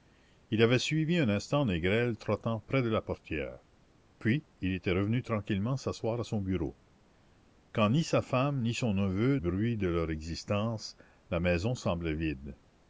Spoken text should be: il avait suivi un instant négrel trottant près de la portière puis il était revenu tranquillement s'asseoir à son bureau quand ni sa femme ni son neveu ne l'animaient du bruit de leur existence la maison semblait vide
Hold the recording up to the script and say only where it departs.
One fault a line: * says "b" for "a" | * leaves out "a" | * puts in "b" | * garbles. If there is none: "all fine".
* leaves out "ne l'animaient du"